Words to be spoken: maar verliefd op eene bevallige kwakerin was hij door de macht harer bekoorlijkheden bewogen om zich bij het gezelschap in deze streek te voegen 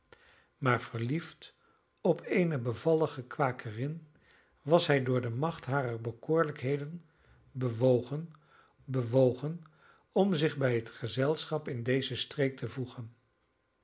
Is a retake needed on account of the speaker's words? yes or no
yes